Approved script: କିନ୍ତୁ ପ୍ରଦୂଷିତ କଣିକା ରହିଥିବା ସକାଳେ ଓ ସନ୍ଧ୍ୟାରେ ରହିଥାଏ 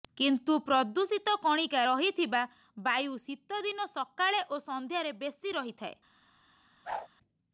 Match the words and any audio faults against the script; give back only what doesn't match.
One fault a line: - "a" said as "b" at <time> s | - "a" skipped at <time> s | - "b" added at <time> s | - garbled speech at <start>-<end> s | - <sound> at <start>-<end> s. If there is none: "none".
- "ବାୟୁ ଶୀତଦିନ" added at 2.8 s
- "ବେଶୀ" added at 5.2 s
- whoosh at 6.8-7.1 s